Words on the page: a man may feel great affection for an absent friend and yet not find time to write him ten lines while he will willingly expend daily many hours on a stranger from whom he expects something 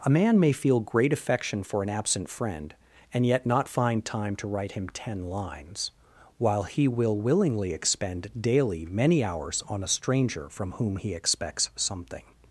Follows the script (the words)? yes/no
yes